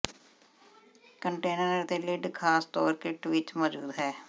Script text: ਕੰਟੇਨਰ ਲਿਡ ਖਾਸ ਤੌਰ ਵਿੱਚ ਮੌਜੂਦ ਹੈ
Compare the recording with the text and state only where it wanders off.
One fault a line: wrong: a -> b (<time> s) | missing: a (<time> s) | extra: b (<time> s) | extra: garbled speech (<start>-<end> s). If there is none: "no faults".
extra: ਅਤੇ (1.8 s)
extra: ਕਿੱਟ (2.9 s)